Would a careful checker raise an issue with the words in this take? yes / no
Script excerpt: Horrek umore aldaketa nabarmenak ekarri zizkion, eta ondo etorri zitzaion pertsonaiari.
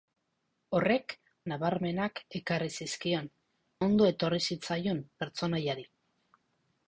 yes